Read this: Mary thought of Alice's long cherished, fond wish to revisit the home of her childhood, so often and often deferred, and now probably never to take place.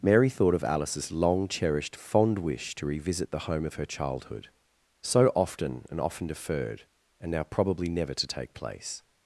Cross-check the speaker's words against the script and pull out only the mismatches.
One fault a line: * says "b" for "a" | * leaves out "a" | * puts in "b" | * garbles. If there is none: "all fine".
all fine